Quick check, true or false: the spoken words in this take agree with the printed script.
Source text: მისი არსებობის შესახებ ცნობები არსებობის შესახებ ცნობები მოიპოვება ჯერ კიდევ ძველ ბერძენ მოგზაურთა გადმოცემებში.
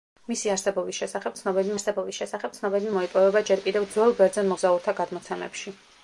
true